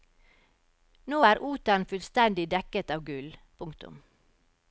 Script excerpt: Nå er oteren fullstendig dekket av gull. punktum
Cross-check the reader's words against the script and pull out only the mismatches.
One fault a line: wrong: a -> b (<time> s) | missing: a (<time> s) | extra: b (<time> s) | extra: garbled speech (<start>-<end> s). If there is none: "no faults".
no faults